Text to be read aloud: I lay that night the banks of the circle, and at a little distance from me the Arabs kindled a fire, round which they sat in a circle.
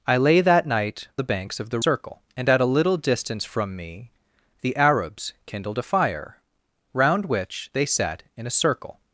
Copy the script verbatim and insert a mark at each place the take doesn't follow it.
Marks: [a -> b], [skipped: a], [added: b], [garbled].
I lay that night the banks of the circle, and at a little distance from me the Arabs kindled a fire, round which they sat in a circle.